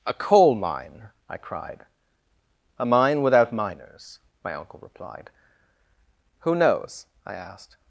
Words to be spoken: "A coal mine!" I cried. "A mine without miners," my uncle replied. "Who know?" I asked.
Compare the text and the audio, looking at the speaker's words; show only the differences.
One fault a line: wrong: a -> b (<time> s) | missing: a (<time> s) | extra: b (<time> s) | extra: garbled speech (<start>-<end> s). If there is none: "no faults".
wrong: know -> knows (6.5 s)